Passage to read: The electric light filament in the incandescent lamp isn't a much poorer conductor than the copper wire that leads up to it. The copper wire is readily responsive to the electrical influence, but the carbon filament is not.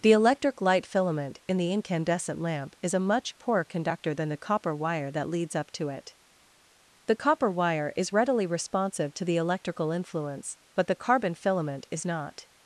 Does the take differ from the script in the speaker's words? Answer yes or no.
yes